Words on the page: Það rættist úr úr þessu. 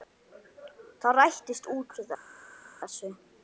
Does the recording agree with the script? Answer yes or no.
no